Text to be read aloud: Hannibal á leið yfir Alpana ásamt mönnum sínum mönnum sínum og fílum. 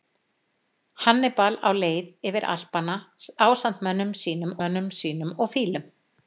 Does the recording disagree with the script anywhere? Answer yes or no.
no